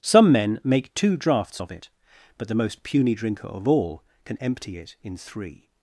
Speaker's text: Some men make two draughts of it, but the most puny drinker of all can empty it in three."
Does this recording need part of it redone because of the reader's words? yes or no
no